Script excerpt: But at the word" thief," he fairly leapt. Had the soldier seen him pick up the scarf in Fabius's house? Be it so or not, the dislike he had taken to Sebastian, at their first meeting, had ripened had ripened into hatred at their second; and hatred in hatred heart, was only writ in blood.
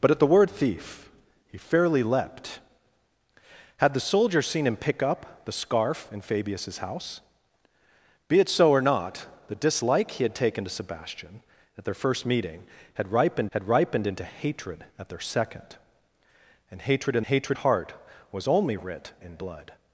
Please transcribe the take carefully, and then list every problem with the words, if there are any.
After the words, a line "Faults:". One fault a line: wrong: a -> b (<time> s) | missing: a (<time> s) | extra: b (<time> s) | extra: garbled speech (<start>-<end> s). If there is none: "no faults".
But at the word" thief," he fairly leapt. Had the soldier seen him pick up the scarf in Fabius's house? Be it so or not, the dislike he had taken to Sebastian, at their first meeting, had ripened had ripened into hatred at their second; and hatred in hatred heart, was only writ in blood.
Faults:
no faults